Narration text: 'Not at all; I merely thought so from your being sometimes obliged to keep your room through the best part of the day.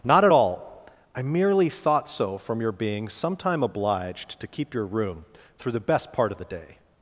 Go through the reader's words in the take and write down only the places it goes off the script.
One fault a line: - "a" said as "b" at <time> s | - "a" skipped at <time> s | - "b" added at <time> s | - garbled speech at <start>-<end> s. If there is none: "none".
- "sometimes" said as "sometime" at 3.1 s